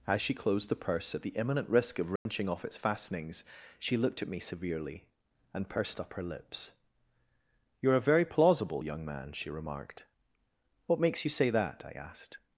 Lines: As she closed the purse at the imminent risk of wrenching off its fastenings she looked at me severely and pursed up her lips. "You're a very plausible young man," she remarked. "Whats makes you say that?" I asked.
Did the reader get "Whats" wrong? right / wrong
wrong